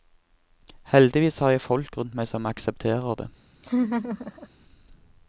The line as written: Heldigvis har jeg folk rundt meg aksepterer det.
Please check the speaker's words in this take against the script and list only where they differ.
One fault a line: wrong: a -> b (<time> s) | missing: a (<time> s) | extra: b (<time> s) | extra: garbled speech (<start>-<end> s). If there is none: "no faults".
extra: som (2.3 s)